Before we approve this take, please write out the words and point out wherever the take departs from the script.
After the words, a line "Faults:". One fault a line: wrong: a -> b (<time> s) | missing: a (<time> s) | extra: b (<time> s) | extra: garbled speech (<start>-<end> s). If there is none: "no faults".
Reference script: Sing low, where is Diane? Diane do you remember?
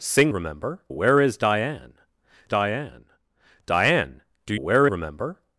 Sing remember, where is Diane Diane? Diane do where remember?
Faults:
wrong: low -> remember (0.3 s)
extra: Diane (3.7 s)
wrong: you -> where (4.5 s)